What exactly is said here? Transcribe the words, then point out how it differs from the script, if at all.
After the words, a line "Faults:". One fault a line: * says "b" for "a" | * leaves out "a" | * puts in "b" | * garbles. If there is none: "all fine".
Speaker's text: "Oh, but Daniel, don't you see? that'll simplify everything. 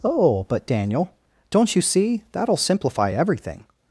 "Oh, but Daniel, don't you see? that'll simplify everything.
Faults:
all fine